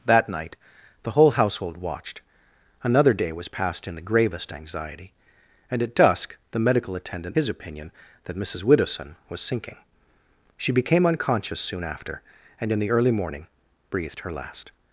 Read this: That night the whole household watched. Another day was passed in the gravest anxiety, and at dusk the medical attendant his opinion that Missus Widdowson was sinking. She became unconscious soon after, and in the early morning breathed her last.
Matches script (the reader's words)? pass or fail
pass